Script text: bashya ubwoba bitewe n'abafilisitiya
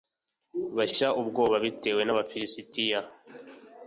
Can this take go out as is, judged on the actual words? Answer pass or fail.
pass